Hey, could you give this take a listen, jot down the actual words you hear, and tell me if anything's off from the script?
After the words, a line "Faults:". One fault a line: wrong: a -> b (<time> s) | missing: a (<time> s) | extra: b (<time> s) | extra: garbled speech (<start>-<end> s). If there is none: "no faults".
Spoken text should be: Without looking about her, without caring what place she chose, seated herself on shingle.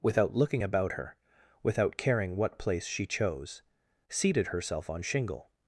Without looking about her, without caring what place she chose, seated herself on shingle.
Faults:
no faults